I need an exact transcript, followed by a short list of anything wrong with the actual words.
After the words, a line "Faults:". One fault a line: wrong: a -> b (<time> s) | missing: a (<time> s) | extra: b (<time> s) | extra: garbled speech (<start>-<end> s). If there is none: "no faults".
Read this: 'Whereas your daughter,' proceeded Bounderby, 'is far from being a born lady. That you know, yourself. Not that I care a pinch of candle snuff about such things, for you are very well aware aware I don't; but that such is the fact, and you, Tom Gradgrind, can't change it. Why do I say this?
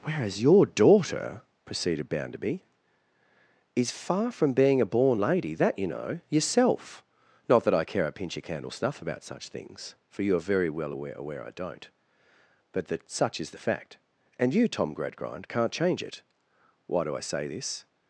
'Whereas your daughter,' proceeded Bounderby, 'is far from being a born lady. That you know, yourself. Not that I care a pinch of candle snuff about such things, for you are very well aware aware I don't; but that such is the fact, and you, Tom Gradgrind, can't change it. Why do I say this?
Faults:
no faults